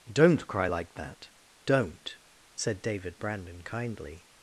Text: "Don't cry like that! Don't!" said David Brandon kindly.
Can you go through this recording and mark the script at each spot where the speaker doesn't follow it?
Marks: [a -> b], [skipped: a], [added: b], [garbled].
"Don't cry like that! Don't!" said David Brandon kindly.